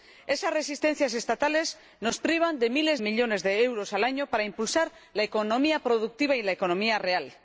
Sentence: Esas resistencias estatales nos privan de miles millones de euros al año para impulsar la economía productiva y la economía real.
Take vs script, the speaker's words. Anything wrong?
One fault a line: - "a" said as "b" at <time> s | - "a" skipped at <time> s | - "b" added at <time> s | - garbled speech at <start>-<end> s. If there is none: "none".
none